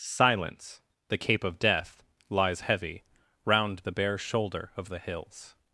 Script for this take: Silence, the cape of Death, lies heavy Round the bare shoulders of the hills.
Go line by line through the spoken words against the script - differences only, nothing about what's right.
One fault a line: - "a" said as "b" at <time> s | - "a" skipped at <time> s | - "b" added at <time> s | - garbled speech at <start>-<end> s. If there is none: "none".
- "shoulders" said as "shoulder" at 4.2 s